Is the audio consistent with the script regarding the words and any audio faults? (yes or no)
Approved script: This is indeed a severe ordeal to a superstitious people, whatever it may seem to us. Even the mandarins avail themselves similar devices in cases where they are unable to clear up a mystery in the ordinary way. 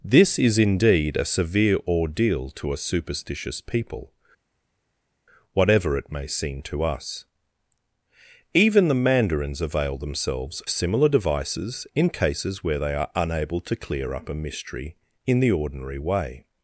yes